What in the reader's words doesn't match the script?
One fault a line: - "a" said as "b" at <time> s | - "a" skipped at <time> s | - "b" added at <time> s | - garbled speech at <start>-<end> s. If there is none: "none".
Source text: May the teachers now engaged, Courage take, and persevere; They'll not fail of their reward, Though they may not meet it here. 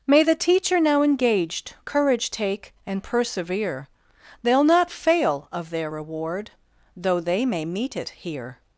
- "teachers" said as "teacher" at 0.3 s
- "not" skipped at 7.6 s